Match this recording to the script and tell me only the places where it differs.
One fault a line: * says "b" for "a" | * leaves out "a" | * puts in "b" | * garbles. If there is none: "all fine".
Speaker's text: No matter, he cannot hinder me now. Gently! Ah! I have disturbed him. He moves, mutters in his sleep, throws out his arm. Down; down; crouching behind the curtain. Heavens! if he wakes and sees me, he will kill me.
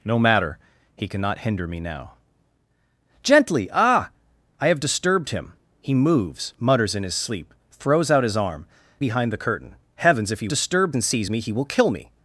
* leaves out "Down down crouching"
* says "disturbed" for "wakes"